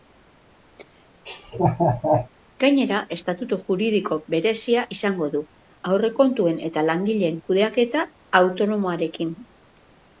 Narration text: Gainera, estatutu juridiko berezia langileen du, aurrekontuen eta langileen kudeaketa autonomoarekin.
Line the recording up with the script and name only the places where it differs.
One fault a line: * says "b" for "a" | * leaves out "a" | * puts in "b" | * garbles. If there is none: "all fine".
* says "izango" for "langileen"